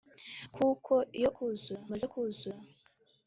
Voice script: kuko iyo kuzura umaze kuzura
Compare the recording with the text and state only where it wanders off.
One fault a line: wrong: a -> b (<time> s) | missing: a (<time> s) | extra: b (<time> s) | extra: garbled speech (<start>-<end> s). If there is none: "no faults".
no faults